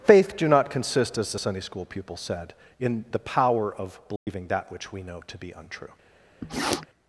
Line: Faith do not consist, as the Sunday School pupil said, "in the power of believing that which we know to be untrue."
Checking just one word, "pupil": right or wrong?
right